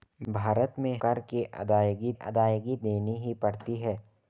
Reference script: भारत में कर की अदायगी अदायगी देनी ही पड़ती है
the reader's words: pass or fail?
pass